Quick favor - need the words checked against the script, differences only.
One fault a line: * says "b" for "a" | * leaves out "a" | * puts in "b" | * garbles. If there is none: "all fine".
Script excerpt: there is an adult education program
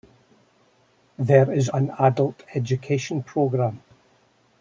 all fine